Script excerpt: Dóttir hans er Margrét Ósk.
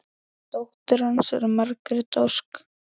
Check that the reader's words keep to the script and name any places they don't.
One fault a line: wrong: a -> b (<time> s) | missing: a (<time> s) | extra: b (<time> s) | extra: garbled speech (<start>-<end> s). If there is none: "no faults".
no faults